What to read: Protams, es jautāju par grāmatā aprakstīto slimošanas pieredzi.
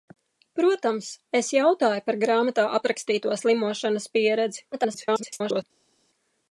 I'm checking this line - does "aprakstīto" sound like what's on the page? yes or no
yes